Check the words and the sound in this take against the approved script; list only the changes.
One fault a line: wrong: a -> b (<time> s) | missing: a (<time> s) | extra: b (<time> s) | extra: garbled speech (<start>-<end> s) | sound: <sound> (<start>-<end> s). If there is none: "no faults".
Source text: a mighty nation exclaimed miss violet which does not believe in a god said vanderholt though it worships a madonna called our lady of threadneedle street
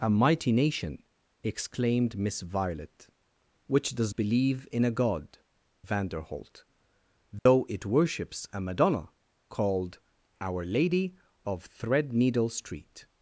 missing: not (4.2 s)
missing: said (5.4 s)
sound: dropout (7.4-7.5 s)